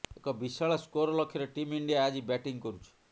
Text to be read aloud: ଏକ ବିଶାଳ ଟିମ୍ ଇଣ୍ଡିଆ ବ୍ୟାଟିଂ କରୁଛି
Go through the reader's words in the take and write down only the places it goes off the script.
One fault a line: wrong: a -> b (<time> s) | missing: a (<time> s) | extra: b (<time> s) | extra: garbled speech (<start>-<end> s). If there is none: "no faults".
extra: ସ୍କୋର ଲକ୍ଷ୍ୟରେ (0.8 s)
extra: ଆଜି (2.0 s)